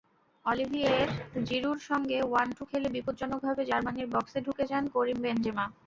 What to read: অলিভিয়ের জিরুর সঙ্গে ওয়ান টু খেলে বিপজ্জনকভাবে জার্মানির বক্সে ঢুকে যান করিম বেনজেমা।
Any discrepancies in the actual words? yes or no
no